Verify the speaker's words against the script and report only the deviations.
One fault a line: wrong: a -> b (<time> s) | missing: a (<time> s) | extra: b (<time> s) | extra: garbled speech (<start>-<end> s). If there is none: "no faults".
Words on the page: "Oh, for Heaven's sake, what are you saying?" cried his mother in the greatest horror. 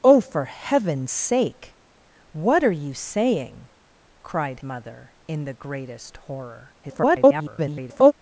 missing: his (4.6 s)
extra: garbled speech (6.8-8.1 s)